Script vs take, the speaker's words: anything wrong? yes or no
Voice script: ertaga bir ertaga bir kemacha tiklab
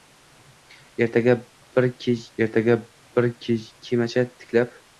no